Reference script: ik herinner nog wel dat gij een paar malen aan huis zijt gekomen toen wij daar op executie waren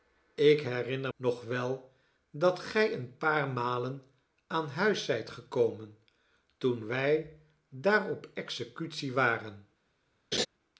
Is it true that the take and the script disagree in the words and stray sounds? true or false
true